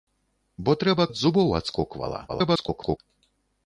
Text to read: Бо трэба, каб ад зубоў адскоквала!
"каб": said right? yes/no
no